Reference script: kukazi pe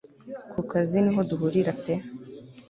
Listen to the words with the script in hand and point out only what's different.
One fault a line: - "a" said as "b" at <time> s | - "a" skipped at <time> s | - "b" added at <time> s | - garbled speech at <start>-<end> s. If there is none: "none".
- "niho duhurira" added at 1.0 s